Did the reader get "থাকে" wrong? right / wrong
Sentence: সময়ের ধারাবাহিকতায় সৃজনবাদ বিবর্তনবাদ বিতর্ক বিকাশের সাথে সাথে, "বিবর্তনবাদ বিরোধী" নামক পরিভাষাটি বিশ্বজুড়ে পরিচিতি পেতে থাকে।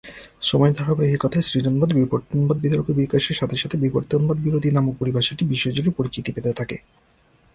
right